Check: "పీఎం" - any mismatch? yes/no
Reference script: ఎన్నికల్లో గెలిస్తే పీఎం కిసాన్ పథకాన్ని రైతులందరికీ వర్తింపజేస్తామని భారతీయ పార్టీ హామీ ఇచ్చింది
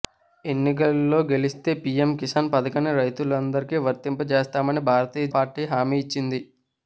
no